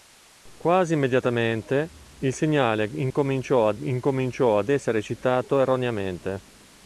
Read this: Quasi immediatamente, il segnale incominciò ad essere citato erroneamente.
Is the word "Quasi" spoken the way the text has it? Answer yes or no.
yes